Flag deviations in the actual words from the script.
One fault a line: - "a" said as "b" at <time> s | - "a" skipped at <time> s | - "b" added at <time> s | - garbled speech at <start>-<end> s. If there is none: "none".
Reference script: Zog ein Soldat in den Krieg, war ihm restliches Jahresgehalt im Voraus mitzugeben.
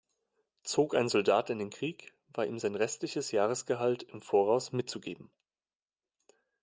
- "sein" added at 2.6 s